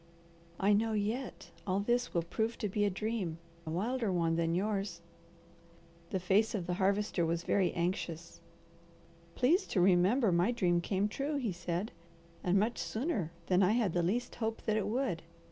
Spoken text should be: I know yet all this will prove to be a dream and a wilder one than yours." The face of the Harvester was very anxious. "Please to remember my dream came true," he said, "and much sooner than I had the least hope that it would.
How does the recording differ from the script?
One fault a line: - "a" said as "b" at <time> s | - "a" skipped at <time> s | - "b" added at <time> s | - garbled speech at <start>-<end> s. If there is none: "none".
- "and" skipped at 3.4 s